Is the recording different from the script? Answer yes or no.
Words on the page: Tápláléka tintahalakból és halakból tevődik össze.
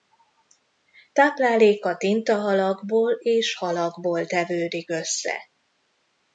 no